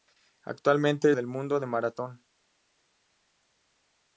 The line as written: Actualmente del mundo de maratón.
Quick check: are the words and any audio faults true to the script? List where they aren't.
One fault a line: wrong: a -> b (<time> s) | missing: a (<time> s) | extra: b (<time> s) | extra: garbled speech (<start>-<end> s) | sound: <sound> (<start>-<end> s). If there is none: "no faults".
no faults